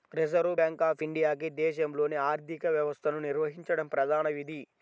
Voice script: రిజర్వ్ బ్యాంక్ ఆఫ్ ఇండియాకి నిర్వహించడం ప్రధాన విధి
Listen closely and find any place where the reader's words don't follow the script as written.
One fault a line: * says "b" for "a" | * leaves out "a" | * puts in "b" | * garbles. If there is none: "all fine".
* puts in "దేశంలోని ఆర్థిక వ్యవస్థను"